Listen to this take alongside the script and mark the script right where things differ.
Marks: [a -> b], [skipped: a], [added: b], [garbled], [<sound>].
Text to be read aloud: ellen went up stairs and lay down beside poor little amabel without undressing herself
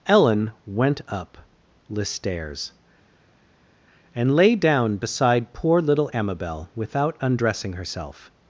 ellen went up [added: the] stairs and lay down beside poor little amabel without undressing herself